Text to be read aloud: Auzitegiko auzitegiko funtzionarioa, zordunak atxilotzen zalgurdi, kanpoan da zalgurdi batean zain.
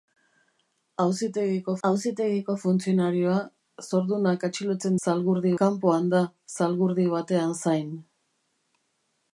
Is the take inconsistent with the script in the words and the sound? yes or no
no